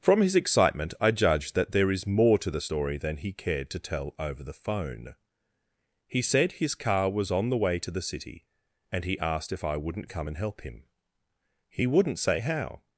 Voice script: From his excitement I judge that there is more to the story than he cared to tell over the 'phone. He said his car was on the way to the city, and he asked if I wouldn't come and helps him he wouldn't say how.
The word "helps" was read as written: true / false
false